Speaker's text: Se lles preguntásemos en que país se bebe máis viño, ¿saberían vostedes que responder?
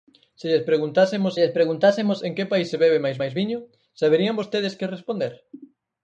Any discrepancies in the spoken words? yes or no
yes